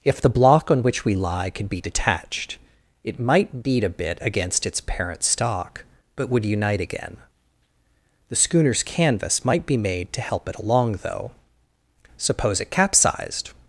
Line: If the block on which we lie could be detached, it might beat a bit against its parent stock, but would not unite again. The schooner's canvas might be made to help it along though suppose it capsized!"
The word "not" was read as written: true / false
false